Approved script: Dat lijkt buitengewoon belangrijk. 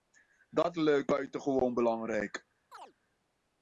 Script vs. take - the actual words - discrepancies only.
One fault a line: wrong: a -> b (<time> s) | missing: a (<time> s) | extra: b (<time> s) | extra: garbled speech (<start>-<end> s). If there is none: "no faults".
no faults